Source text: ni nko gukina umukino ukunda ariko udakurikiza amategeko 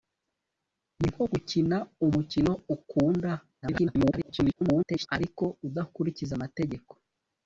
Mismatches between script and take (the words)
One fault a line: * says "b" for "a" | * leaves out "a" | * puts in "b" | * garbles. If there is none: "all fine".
* garbles